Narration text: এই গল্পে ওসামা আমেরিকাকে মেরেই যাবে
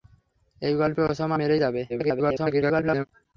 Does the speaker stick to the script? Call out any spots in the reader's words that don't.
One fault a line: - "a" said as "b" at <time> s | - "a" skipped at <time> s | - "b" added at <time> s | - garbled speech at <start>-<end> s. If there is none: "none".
- "আমেরিকাকে" skipped at 1.4 s
- garbled speech at 1.9-3.1 s